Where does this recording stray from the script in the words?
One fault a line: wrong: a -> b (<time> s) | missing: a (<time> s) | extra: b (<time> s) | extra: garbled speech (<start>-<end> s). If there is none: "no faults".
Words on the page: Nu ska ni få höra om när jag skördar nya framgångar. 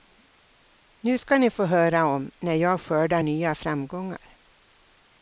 no faults